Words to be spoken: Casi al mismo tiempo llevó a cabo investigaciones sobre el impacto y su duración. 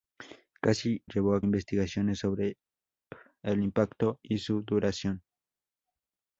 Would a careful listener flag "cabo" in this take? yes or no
yes